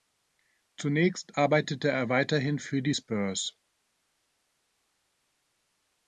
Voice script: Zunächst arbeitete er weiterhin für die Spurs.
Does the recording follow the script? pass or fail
pass